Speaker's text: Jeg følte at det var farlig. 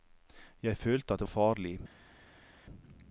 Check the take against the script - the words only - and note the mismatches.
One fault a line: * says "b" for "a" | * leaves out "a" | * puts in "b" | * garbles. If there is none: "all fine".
* leaves out "var"